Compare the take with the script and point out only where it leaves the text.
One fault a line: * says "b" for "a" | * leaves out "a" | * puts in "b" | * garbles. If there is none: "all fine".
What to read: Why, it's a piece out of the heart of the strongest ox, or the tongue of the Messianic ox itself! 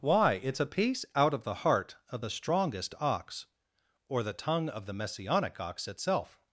all fine